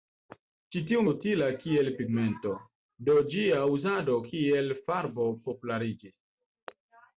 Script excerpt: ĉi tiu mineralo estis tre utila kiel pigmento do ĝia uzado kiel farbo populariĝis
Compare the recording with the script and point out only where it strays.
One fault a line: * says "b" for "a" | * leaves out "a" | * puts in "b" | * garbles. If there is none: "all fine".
* leaves out "mineralo estis tre"